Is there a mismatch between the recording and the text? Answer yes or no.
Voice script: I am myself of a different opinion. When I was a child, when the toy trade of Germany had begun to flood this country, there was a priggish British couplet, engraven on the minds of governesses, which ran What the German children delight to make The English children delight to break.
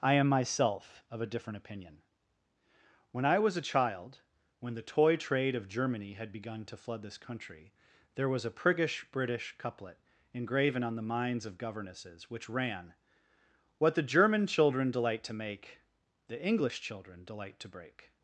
no